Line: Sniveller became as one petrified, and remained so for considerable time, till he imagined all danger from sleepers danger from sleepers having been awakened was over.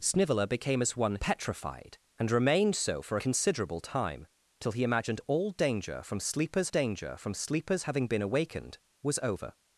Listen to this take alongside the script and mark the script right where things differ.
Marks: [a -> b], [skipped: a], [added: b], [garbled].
Sniveller became as one petrified, and remained so for considerable time, till he imagined all danger from sleepers danger from sleepers having been awakened was over.